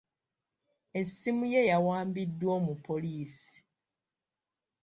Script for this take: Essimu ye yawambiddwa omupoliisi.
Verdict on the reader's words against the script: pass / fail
pass